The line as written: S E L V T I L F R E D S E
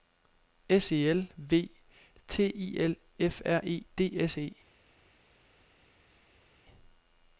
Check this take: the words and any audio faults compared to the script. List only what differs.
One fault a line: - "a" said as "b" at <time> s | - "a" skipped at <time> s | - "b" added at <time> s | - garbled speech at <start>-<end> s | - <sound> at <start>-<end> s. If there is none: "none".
none